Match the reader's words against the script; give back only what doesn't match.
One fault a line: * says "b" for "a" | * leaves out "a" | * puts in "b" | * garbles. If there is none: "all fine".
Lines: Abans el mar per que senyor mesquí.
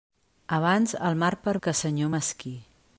all fine